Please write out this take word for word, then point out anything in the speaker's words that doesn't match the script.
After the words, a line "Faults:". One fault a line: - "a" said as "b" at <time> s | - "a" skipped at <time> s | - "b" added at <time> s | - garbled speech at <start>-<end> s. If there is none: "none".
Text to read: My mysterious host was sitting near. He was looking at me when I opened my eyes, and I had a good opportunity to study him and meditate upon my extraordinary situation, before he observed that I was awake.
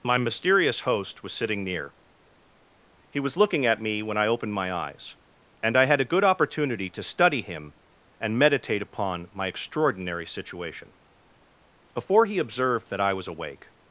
My mysterious host was sitting near. He was looking at me when I opened my eyes, and I had a good opportunity to study him and meditate upon my extraordinary situation, before he observed that I was awake.
Faults:
none